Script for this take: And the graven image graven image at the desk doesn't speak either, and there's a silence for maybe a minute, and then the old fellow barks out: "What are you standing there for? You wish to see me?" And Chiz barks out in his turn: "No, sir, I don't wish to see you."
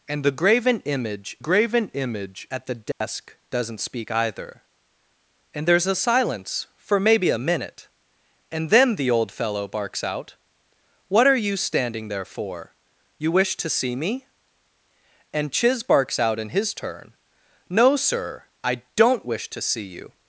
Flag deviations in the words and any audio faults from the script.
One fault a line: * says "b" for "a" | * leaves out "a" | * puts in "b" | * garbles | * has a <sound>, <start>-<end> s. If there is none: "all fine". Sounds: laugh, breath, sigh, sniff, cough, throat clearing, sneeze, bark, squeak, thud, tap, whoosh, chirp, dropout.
* has a dropout, 2.9-3.0 s